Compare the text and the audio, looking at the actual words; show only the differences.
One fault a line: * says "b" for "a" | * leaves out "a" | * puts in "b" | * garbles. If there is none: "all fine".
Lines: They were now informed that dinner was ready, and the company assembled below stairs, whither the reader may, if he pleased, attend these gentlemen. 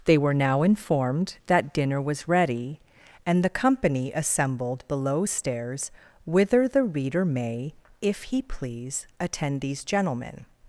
* says "please" for "pleased"